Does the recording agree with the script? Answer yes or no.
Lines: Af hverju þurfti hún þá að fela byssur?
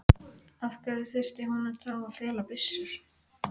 yes